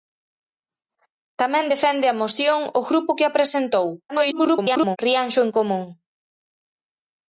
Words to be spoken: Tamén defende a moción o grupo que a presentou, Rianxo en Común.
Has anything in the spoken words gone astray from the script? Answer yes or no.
yes